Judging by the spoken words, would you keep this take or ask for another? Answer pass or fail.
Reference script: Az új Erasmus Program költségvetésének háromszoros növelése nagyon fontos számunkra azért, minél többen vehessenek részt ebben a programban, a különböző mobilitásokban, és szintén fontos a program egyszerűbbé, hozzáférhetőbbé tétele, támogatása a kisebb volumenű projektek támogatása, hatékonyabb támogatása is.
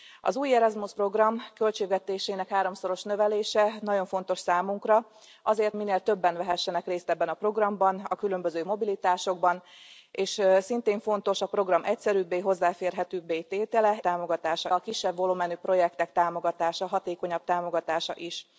pass